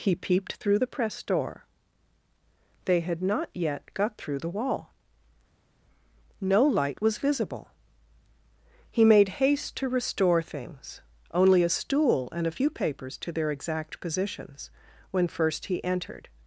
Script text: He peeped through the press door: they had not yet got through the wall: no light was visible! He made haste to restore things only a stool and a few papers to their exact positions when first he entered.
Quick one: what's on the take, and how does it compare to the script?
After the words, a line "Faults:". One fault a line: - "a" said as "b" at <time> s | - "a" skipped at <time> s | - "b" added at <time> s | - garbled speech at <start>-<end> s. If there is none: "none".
He peeped through the press door: they had not yet got through the wall: no light was visible! He made haste to restore things only a stool and a few papers to their exact positions when first he entered.
Faults:
none